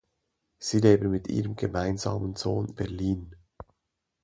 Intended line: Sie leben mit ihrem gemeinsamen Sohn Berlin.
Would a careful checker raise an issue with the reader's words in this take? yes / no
no